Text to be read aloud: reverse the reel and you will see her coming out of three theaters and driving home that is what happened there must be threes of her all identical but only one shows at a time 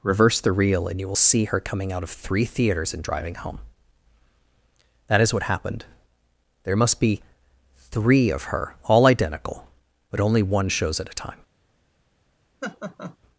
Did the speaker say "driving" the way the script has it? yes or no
yes